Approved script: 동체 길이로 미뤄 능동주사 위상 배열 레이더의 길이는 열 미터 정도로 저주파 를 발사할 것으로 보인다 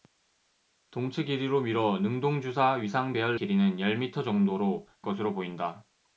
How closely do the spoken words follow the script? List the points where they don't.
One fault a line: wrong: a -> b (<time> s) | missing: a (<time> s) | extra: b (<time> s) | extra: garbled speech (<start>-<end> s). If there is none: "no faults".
missing: 레이더의 (3.4 s)
missing: 저주파 를 발사할 (4.9 s)